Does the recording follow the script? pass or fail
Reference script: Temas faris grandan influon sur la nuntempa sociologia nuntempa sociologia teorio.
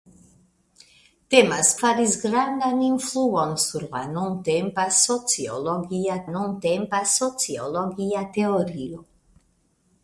pass